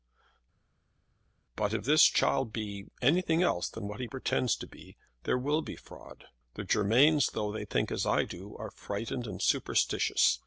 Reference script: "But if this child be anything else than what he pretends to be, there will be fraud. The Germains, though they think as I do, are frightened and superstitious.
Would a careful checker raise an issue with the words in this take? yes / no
no